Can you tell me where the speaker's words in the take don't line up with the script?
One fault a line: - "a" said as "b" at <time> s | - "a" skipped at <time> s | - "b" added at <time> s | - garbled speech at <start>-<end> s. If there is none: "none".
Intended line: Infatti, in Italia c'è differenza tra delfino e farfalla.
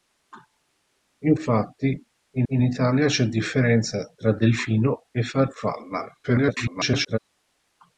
- "in" added at 2.5 s
- garbled speech at 6.2-7.2 s